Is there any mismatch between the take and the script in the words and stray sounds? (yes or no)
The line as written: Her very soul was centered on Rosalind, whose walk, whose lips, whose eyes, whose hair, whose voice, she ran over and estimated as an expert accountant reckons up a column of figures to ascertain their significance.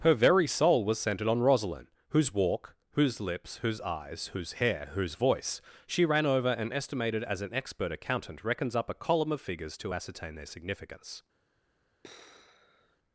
yes